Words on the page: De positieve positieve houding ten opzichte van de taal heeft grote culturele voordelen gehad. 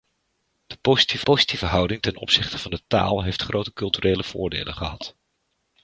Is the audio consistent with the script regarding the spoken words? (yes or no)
yes